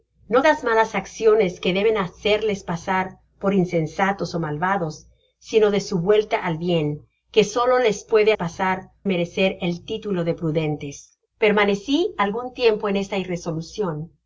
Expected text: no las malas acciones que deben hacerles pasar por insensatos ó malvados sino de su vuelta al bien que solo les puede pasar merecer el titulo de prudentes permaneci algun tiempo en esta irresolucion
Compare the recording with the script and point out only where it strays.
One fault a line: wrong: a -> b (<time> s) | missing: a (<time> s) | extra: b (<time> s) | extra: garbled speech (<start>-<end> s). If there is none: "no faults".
no faults